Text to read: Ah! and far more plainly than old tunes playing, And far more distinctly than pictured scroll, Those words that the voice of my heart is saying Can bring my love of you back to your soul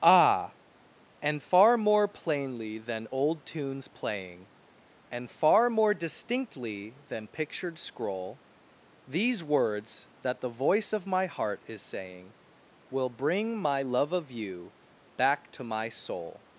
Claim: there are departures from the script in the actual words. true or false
true